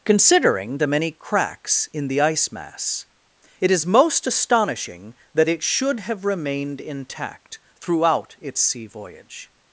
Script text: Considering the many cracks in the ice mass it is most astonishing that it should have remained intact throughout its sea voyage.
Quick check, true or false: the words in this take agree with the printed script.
true